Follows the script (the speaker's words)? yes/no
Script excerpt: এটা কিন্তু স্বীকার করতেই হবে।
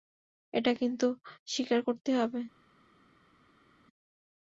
yes